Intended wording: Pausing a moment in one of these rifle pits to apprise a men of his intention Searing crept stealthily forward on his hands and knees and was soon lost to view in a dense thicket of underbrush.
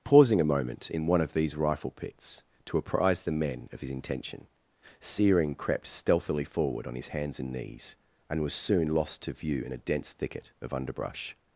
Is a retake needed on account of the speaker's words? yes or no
yes